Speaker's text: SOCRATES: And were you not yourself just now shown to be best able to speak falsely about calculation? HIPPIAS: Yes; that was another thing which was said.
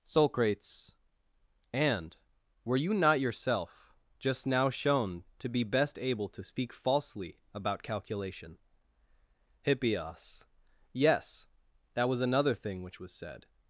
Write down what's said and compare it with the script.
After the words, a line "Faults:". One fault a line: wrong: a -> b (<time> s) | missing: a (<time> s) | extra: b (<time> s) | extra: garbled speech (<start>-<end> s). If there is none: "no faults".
SOCRATES: And were you not yourself just now shown to be best able to speak falsely about calculation? HIPPIAS: Yes; that was another thing which was said.
Faults:
no faults